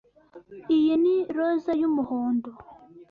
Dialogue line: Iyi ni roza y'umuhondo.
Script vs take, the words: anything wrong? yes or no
no